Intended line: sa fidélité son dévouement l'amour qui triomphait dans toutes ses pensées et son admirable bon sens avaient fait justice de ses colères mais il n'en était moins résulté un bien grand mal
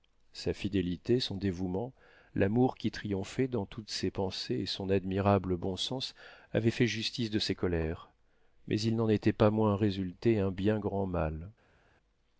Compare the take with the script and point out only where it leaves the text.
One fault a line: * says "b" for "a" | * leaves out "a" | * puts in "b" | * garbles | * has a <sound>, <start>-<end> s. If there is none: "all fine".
* puts in "pas"